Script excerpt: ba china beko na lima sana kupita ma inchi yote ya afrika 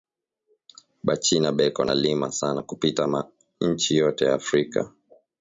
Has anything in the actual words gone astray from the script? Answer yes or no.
no